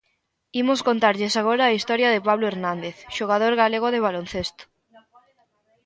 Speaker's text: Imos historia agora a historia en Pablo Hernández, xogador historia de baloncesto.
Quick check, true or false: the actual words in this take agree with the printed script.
false